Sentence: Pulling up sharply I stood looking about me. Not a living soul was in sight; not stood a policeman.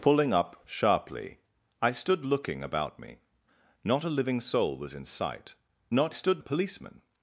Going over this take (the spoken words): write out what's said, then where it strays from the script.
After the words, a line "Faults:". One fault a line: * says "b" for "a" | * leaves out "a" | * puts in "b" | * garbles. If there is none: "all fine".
Pulling up sharply I stood looking about me. Not a living soul was in sight; not stood a policeman.
Faults:
all fine